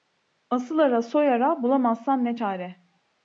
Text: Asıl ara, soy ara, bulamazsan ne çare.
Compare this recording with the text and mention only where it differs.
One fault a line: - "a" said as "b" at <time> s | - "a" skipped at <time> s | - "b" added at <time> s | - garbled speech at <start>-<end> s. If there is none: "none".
none